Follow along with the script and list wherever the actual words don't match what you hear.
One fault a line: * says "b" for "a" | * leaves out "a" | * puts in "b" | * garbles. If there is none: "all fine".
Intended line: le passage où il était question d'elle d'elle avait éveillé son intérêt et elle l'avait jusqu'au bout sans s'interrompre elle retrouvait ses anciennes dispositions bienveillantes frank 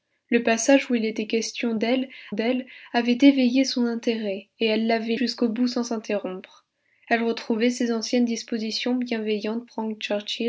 all fine